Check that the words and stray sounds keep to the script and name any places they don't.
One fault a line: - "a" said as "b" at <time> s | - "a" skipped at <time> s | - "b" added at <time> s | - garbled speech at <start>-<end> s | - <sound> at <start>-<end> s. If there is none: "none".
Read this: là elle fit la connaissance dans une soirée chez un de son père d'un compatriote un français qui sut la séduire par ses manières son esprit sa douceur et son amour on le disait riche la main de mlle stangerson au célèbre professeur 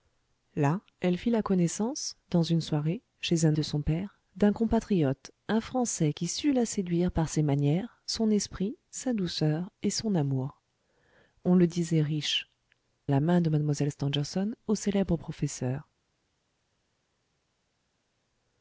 none